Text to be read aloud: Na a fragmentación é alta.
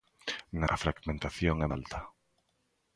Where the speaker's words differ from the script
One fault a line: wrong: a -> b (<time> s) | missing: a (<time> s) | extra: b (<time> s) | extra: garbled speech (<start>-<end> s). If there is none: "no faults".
no faults